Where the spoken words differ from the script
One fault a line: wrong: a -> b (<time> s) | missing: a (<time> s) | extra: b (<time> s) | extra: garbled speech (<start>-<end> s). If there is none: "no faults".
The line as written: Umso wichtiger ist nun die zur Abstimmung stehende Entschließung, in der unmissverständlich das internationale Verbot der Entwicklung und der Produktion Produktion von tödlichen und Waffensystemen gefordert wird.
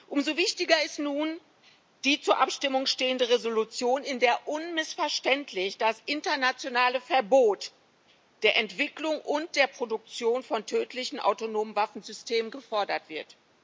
missing: Produktion (10.4 s)
wrong: und -> autonomen (11.2 s)